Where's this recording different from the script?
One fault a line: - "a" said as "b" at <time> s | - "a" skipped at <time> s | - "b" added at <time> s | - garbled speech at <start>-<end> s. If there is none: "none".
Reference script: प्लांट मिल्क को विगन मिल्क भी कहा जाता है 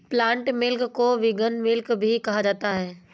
none